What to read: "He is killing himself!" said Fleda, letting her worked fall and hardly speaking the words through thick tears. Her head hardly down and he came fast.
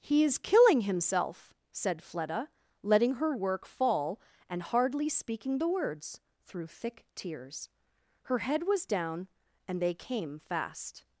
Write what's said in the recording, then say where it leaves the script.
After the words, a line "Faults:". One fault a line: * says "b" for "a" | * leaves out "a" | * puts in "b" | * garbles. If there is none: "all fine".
"He is killing himself!" said Fleda, letting her work fall and hardly speaking the words through thick tears. Her head was down and they came fast.
Faults:
* says "work" for "worked"
* says "was" for "hardly"
* says "they" for "he"